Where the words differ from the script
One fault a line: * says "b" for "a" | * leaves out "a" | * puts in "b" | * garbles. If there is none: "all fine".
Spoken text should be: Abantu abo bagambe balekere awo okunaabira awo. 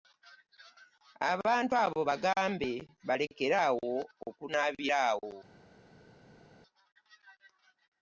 all fine